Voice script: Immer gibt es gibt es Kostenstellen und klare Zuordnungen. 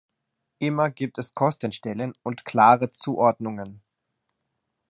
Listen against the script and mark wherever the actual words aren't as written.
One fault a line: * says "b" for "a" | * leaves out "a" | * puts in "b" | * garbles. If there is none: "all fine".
* leaves out "gibt es"